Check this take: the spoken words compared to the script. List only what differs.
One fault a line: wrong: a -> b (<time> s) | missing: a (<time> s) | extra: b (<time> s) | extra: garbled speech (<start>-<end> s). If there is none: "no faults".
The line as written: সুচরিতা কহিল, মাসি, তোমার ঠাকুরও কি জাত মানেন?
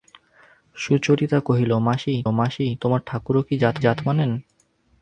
extra: মাসি (2.3 s)
extra: জাত (3.8 s)